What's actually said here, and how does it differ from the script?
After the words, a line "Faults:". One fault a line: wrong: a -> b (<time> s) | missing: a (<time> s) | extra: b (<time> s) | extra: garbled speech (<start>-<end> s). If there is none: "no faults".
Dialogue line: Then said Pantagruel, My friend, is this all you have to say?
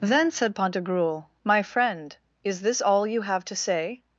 Then said Pantagruel, My friend, is this all you have to say?
Faults:
no faults